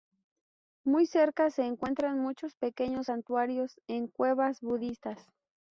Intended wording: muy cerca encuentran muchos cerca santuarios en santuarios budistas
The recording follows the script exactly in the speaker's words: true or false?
false